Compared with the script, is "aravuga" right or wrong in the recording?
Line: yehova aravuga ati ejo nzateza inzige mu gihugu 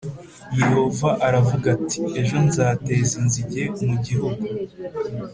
right